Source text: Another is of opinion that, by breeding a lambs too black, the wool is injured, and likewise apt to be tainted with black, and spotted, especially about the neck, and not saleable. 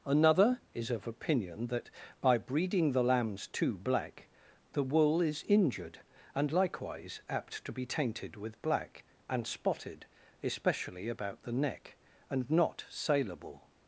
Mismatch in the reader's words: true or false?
true